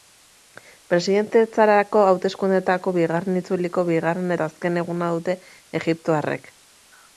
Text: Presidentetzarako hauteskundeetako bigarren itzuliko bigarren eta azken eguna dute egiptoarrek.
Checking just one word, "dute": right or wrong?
right